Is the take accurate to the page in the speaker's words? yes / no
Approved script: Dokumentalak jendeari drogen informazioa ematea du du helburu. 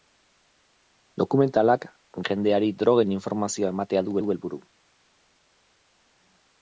yes